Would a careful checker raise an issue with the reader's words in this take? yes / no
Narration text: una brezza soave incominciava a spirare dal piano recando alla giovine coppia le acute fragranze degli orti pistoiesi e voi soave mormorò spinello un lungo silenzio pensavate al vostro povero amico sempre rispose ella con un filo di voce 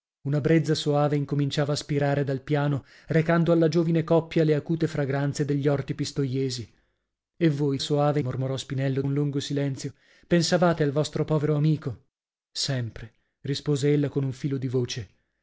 no